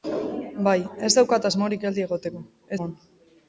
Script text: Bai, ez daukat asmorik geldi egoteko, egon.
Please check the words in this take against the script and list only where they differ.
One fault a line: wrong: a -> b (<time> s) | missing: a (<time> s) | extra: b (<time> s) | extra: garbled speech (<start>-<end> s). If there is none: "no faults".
no faults